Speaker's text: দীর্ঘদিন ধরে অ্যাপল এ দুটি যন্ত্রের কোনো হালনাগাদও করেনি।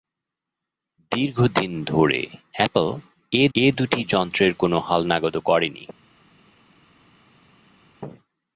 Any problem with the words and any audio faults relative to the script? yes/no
yes